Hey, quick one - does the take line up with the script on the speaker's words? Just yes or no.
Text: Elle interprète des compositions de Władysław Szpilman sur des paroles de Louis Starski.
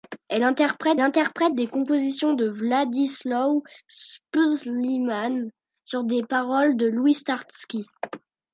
no